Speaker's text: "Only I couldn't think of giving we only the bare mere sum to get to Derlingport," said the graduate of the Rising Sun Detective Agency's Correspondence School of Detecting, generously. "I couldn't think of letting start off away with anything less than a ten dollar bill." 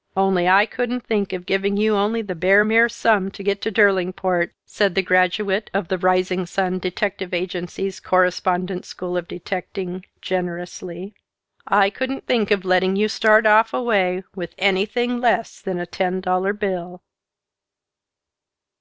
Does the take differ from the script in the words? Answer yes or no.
yes